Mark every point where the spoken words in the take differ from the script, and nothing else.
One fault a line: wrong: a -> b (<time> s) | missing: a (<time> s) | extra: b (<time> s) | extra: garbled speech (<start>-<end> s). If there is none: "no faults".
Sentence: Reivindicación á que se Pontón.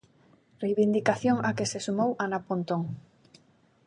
extra: sumou Ana (1.9 s)